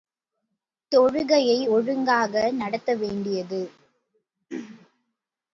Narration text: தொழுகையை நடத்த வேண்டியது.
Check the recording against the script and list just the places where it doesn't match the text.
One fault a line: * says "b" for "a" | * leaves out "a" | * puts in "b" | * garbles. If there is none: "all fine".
* puts in "ஒழுங்காக"